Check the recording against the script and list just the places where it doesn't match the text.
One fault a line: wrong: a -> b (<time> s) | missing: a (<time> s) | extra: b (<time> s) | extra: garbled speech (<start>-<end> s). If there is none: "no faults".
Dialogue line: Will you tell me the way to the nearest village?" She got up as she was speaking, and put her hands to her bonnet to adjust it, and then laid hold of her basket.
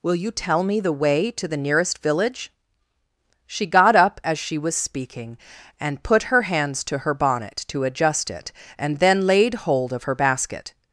no faults